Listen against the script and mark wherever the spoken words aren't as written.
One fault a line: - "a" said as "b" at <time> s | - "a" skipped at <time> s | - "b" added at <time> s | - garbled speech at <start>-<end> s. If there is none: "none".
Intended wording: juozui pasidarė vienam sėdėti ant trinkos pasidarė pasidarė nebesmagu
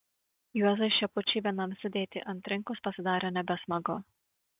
- "pasidarė" said as "šepučiui" at 0.9 s
- "pasidarė" skipped at 3.3 s